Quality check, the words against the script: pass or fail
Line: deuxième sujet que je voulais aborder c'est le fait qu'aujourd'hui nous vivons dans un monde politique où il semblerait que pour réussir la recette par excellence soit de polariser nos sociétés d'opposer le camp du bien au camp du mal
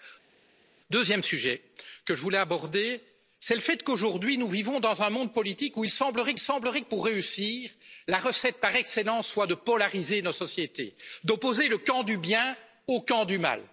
fail